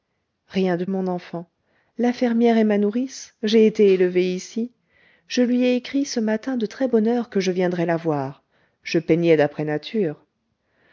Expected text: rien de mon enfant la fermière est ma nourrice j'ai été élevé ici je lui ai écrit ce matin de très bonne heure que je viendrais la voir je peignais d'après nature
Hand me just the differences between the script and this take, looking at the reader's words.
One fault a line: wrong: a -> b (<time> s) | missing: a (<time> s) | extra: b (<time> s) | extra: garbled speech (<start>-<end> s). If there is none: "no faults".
no faults